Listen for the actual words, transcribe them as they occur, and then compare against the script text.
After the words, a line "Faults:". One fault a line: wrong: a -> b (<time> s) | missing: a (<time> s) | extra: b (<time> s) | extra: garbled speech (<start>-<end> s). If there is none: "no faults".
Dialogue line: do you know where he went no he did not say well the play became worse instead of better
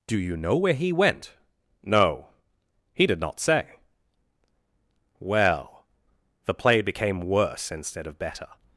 do you know where he went no he did not say well the play became worse instead of better
Faults:
no faults